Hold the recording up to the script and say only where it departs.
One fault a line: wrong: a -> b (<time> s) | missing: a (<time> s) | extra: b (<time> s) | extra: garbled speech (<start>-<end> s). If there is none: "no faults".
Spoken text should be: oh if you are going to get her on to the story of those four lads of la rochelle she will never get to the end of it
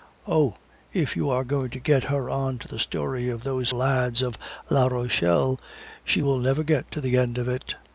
missing: four (3.7 s)